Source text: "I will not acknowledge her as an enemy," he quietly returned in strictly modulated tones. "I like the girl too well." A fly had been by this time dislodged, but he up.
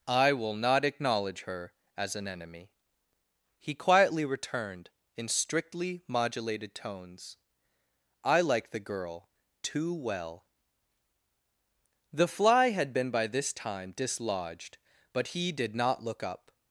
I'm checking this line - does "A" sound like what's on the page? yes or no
no